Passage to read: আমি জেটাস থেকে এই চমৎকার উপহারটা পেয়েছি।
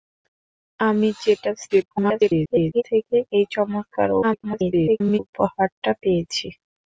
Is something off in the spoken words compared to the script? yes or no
yes